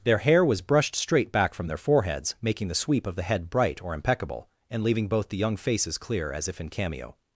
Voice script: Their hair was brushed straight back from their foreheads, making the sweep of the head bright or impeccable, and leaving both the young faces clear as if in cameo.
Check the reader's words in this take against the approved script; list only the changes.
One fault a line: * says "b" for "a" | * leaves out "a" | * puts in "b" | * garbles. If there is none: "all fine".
all fine